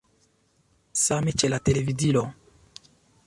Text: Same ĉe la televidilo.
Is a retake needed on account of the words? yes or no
no